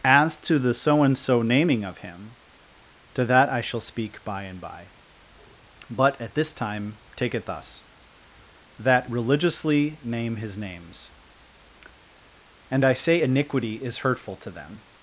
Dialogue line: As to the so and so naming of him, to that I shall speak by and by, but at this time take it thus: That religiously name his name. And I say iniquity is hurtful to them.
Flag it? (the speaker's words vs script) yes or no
yes